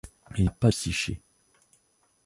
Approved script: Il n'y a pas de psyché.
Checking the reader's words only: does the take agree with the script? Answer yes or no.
no